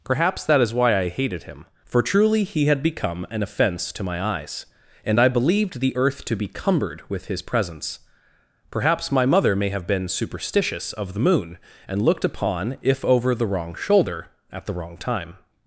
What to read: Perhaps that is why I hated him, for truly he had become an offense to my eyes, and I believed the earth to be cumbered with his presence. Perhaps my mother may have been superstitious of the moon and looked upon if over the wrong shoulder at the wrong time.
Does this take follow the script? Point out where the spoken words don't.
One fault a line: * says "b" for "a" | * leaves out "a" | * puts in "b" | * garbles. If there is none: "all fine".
all fine